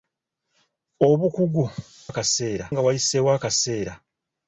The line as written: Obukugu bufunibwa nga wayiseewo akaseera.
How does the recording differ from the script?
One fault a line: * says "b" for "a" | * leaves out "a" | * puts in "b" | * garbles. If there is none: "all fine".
* says "akaseera" for "bufunibwa"